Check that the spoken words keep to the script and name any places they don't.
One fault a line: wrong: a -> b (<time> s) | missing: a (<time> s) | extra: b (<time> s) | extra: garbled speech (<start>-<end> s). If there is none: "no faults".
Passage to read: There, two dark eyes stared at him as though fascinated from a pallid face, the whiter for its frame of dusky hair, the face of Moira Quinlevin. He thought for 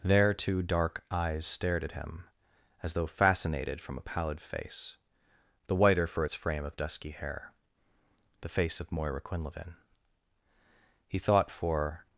no faults